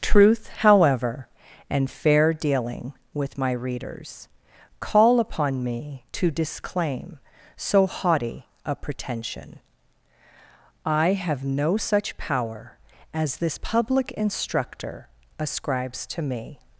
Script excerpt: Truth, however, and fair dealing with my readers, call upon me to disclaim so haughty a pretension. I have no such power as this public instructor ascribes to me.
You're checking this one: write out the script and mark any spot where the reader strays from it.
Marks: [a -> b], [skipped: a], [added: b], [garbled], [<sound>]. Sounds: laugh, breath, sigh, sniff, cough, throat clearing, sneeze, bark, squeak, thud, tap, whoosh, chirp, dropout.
Truth, however, and fair dealing with my readers, call upon me to disclaim so haughty a pretension. I have no such power as this public instructor ascribes to me.